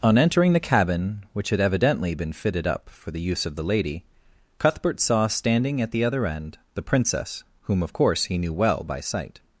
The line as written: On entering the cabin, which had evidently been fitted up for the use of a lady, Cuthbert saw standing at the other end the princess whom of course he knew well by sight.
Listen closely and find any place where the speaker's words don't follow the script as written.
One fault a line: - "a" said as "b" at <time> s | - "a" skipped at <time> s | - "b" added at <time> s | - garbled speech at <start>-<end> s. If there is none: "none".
- "a" said as "the" at 3.5 s